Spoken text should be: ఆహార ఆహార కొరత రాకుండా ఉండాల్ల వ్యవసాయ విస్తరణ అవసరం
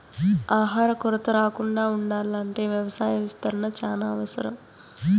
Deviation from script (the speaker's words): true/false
true